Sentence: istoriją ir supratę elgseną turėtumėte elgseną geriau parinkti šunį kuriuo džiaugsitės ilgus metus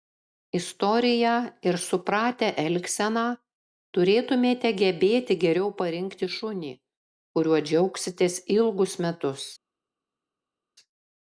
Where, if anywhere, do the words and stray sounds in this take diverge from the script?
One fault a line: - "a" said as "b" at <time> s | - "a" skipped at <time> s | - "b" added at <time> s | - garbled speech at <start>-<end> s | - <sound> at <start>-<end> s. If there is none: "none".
- "elgseną" said as "gebėti" at 4.8 s